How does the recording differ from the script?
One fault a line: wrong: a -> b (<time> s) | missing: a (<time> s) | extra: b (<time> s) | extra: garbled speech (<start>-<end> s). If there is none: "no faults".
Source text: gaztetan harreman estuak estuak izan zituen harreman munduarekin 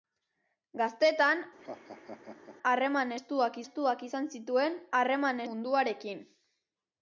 no faults